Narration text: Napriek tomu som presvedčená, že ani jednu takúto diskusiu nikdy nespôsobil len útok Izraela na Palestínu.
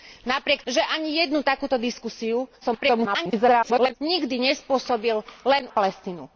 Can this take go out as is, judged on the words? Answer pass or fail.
fail